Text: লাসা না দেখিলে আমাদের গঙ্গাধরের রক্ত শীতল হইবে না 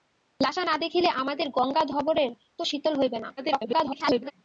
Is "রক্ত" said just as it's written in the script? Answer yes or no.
no